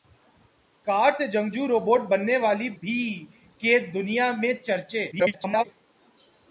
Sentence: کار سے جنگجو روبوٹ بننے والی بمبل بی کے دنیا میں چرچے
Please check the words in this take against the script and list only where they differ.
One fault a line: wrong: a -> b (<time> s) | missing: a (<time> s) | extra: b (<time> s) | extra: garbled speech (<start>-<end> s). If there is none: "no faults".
missing: بمبل (2.7 s)
extra: garbled speech (5.1-5.6 s)